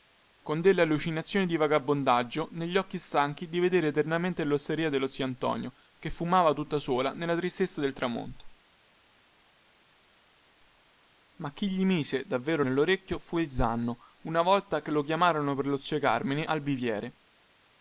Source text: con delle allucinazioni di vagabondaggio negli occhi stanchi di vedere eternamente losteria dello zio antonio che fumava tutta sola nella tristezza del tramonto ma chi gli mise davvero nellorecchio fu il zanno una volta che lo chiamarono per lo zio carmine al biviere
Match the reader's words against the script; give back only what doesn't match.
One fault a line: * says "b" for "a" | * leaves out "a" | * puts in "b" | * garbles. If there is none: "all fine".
all fine